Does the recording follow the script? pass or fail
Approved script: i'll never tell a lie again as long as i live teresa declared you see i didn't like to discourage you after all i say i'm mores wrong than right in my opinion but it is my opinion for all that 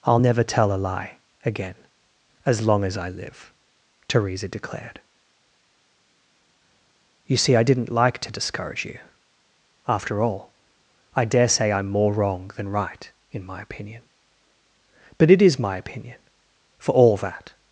fail